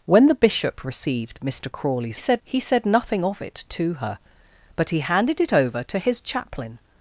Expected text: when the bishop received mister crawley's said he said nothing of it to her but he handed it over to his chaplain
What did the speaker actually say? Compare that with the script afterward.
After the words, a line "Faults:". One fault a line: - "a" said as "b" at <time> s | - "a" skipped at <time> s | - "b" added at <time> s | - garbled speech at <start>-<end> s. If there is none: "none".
when the bishop received mister crawley's said he said nothing of it to her but he handed it over to his chaplain
Faults:
none